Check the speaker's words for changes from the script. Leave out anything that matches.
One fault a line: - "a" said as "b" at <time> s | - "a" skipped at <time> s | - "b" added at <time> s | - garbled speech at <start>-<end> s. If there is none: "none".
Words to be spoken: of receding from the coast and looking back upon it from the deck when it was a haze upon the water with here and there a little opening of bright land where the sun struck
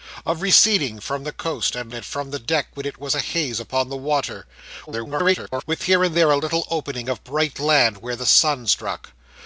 - "looking back upon" skipped at 1.9 s
- garbled speech at 4.9-5.6 s